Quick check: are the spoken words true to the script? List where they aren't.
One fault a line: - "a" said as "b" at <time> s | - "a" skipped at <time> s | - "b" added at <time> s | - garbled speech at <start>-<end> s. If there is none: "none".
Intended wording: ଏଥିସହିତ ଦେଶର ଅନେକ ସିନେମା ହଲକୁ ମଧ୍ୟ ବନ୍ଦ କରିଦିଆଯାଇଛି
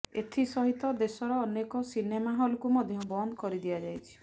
none